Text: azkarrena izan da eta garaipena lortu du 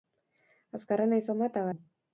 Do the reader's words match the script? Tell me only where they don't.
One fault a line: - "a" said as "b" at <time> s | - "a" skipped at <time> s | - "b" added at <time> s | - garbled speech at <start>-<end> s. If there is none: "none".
- "garaipena lortu" skipped at 1.7 s